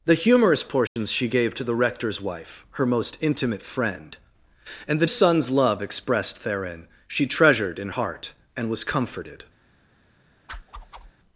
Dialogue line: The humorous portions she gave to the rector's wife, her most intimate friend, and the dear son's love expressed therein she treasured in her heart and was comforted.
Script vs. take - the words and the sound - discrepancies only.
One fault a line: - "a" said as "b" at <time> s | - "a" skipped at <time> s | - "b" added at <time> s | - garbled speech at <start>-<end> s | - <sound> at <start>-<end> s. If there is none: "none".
- dropout at 0.9-1.0 s
- "dear" skipped at 5.0 s
- "her" skipped at 7.9 s
- whoosh at 10.5-11.1 s